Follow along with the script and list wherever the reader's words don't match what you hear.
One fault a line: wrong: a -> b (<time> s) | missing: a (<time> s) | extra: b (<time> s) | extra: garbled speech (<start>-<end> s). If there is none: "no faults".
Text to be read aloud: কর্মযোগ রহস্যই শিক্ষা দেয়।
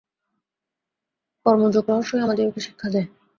extra: আমাদিগকে (2.2 s)